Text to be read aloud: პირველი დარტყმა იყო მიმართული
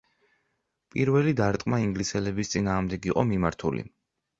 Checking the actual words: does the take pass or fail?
fail